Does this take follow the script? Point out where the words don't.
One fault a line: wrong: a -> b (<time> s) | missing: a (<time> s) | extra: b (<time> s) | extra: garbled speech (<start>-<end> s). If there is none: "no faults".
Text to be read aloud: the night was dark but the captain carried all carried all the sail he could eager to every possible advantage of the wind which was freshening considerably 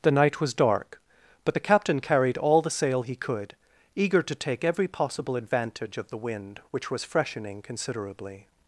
missing: carried all (2.6 s)
extra: take (4.3 s)